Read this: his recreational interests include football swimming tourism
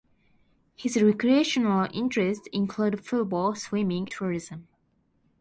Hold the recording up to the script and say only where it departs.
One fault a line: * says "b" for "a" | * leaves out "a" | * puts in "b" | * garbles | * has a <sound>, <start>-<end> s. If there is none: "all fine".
all fine